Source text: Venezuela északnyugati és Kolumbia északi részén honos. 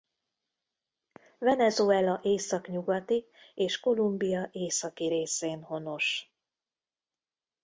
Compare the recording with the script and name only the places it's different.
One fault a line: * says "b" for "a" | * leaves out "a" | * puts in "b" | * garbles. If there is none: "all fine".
all fine